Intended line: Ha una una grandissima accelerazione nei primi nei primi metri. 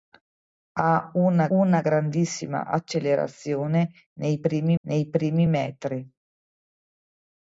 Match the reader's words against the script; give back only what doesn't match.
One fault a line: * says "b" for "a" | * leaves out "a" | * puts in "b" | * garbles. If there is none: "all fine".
all fine